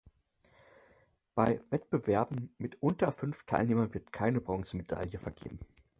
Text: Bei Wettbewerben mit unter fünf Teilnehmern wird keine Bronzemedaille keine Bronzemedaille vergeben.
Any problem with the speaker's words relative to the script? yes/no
yes